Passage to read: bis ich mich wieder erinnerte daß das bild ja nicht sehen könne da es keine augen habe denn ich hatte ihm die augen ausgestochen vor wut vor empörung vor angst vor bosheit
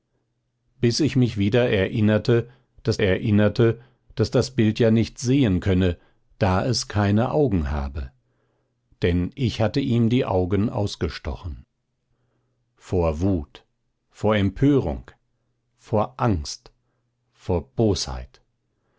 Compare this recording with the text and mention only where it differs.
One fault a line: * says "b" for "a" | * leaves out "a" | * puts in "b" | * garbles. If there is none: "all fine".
* puts in "erinnerte daß"